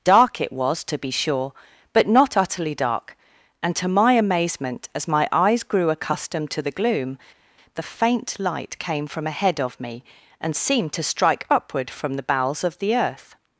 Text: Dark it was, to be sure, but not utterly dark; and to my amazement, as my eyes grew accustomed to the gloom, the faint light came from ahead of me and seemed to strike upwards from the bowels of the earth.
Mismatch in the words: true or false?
true